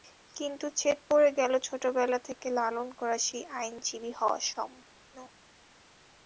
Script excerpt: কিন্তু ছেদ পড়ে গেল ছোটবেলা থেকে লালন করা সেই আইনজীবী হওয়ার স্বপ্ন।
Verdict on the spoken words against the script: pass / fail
pass